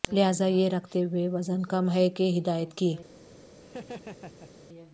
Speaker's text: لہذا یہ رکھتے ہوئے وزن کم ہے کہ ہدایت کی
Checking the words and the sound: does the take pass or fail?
fail